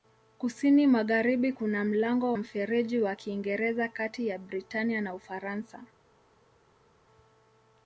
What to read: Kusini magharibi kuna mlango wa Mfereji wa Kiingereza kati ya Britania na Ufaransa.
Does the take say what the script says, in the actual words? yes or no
no